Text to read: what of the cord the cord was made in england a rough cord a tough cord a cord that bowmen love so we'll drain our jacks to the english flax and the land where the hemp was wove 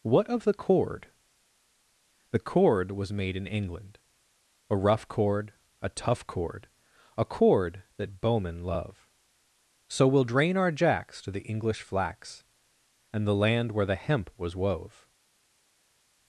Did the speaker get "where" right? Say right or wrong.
right